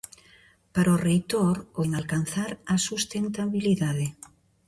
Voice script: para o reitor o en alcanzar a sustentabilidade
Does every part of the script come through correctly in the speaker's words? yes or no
yes